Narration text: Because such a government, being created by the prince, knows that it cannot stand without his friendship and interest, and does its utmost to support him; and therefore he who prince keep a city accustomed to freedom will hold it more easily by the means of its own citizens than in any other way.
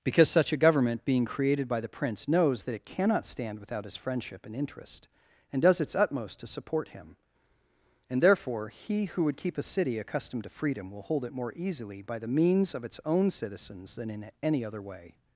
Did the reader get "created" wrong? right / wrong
right